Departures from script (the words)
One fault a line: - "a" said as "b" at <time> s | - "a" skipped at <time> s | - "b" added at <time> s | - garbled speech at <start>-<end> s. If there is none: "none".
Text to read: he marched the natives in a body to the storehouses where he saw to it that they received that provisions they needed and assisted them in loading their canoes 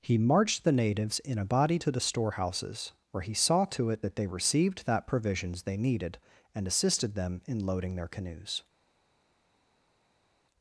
none